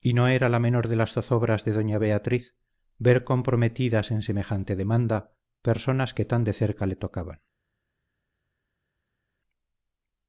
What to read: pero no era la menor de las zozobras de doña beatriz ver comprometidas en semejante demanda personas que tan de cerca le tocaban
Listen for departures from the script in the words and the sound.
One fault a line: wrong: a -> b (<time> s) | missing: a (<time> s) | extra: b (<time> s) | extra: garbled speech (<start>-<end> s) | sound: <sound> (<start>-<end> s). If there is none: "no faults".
wrong: pero -> y (0.0 s)